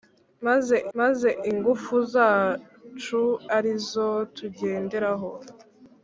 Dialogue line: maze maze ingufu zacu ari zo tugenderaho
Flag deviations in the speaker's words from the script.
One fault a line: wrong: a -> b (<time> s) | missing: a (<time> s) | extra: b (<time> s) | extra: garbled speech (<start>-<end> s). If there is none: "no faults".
no faults